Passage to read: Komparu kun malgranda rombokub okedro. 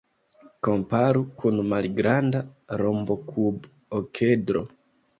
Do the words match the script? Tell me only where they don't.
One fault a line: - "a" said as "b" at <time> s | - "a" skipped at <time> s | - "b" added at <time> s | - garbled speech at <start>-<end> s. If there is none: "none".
none